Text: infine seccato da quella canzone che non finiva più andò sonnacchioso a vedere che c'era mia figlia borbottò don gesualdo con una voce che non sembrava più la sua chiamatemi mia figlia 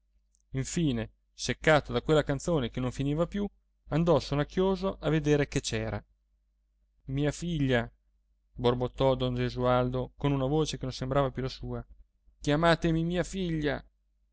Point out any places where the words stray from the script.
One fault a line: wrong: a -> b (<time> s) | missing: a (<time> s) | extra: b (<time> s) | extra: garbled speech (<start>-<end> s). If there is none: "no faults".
no faults